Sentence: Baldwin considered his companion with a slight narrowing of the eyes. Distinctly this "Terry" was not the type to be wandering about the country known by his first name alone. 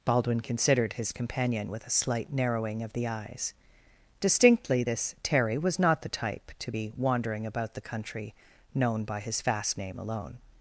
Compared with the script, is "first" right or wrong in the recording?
wrong